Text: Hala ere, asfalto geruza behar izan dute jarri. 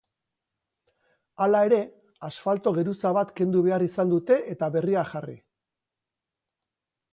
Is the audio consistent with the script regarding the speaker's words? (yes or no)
no